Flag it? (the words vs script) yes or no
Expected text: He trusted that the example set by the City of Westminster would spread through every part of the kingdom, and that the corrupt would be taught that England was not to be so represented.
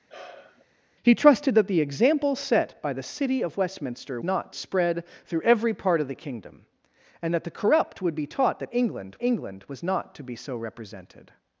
yes